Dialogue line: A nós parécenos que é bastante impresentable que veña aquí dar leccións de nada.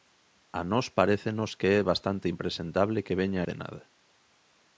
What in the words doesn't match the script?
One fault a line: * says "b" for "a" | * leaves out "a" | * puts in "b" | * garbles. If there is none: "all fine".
* leaves out "aquí dar leccións"